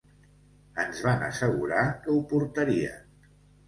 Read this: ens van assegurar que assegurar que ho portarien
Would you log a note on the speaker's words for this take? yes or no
yes